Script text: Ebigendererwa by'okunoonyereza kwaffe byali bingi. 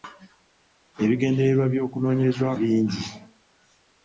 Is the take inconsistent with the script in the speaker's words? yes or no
yes